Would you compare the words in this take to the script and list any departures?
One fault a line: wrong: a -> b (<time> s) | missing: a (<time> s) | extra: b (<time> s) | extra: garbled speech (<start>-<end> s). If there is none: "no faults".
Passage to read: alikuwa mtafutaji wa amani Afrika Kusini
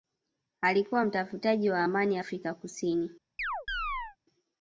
no faults